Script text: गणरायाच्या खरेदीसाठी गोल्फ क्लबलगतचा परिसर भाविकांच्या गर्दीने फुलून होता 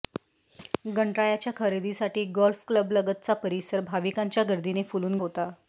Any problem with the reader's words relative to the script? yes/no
no